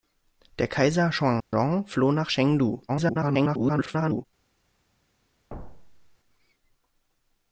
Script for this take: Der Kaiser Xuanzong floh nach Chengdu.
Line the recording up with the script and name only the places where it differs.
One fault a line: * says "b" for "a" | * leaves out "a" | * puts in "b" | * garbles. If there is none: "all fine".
* garbles